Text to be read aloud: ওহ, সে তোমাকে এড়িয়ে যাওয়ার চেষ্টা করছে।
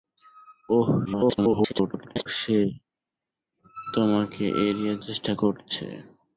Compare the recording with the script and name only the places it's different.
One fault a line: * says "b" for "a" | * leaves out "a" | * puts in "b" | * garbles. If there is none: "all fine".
* garbles
* leaves out "যাওয়ার"